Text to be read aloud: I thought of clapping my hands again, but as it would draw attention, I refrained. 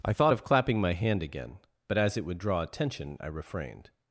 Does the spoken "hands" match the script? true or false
false